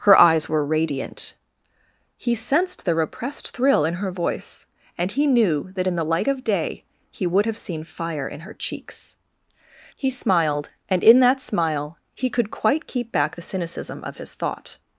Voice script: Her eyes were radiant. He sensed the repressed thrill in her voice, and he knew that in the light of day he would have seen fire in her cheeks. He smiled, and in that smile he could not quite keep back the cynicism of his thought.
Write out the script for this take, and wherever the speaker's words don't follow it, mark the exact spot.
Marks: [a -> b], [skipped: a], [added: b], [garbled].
Her eyes were radiant. He sensed the repressed thrill in her voice, and he knew that in the light of day he would have seen fire in her cheeks. He smiled, and in that smile he could [skipped: not] quite keep back the cynicism of his thought.